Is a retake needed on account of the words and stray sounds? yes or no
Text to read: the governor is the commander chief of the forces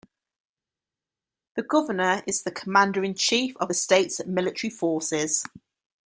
yes